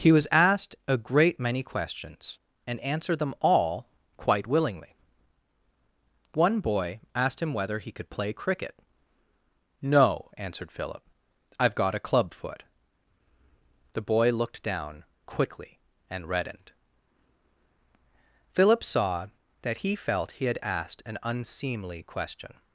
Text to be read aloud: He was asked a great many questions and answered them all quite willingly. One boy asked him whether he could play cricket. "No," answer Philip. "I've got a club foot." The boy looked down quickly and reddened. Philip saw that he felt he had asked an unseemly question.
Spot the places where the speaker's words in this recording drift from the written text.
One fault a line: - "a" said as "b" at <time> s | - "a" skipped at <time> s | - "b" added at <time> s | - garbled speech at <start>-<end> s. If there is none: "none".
- "answer" said as "answered" at 10.3 s